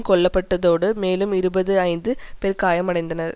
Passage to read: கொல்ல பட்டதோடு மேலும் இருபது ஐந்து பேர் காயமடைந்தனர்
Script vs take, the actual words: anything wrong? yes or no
no